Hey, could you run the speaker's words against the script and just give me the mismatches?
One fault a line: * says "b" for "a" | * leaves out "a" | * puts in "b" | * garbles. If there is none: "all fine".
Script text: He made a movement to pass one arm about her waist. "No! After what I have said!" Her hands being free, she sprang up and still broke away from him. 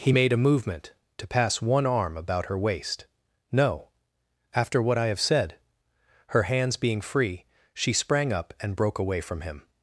* leaves out "still"